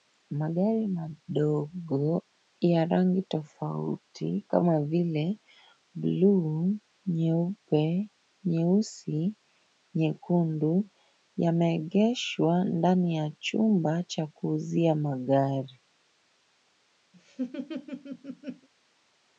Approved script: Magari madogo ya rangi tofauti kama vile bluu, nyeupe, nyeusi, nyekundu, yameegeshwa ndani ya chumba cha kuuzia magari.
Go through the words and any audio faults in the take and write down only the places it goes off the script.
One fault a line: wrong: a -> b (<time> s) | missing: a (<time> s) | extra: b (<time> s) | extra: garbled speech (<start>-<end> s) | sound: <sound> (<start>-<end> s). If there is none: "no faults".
sound: laugh (17.1-18.7 s)